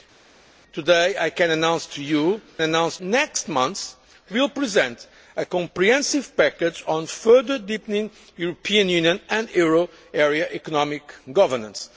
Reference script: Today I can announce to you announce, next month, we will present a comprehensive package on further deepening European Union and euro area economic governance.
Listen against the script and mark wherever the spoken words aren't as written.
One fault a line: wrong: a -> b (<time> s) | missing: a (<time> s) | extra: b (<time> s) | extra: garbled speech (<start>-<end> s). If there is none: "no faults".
no faults